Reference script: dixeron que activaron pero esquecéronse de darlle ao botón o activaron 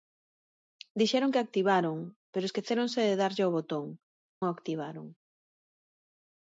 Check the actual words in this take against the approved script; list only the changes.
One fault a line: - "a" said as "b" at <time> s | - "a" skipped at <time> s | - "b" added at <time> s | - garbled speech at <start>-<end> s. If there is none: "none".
none